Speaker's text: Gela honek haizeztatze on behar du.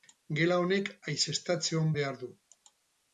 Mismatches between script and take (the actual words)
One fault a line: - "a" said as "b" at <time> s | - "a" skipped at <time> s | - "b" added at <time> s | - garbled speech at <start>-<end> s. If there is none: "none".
none